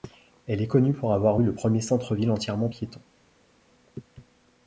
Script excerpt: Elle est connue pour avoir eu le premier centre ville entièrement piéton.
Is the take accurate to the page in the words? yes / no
yes